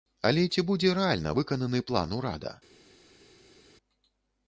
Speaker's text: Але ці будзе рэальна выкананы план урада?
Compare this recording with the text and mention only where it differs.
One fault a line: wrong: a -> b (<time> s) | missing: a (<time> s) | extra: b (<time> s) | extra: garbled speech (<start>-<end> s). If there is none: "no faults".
no faults